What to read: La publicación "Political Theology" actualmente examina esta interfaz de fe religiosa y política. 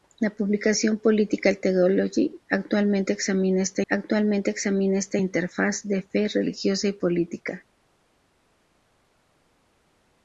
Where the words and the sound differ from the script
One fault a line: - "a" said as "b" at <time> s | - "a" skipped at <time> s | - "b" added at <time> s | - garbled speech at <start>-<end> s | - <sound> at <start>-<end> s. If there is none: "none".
- "actualmente examina esta" added at 3.9 s